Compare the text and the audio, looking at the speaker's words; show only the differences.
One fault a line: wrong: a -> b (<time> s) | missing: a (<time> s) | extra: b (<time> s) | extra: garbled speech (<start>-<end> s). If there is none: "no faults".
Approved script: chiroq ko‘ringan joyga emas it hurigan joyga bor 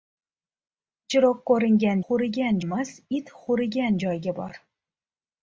wrong: joyga -> hurigan (2.1 s)